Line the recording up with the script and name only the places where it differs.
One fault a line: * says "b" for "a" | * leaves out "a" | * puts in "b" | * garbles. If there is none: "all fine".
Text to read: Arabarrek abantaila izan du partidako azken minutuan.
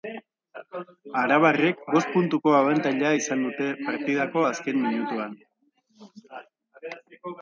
* puts in "bost puntuko"
* says "dute" for "du"